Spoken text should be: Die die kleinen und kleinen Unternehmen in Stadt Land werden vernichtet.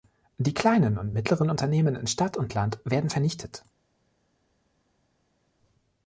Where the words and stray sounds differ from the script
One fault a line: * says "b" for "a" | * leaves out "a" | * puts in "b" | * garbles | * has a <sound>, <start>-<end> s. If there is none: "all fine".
* leaves out "die"
* says "mittleren" for "kleinen"
* puts in "und"